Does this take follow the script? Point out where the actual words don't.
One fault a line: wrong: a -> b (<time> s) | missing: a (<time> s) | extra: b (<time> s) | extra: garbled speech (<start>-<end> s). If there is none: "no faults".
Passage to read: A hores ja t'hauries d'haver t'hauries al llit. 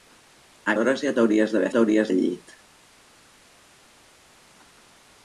no faults